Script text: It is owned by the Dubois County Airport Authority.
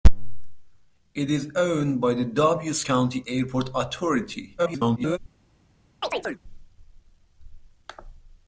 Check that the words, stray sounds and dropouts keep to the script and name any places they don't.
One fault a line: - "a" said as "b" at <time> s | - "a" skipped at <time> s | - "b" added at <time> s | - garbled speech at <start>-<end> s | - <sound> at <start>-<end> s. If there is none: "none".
- garbled speech at 4.6-5.2 s
- chirp at 6.0-6.4 s